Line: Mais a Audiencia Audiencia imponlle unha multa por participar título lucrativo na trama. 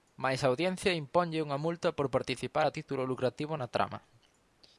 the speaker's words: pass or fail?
fail